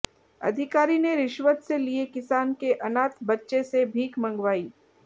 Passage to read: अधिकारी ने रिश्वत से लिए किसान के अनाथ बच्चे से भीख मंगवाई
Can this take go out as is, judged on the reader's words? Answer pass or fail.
pass